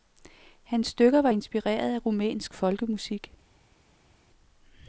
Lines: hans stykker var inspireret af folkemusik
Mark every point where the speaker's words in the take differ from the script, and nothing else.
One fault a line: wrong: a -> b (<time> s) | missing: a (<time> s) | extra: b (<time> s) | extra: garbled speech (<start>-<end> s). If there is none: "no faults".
extra: rumænsk (2.0 s)